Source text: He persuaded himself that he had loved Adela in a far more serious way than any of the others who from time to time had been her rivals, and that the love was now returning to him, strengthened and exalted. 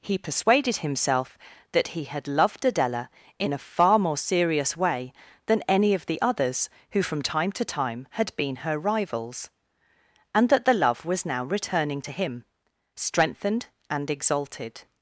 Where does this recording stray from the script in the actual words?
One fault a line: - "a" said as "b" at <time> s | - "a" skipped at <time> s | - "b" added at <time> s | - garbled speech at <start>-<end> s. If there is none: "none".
none